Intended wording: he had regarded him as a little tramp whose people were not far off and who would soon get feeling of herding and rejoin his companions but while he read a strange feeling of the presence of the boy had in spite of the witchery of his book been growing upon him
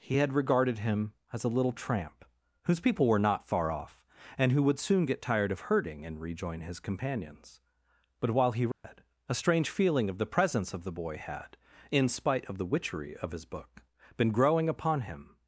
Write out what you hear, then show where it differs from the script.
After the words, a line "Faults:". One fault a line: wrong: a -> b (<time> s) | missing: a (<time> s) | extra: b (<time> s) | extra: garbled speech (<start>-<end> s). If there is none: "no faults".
he had regarded him as a little tramp whose people were not far off and who would soon get tired of herding and rejoin his companions but while he read a strange feeling of the presence of the boy had in spite of the witchery of his book been growing upon him
Faults:
wrong: feeling -> tired (5.2 s)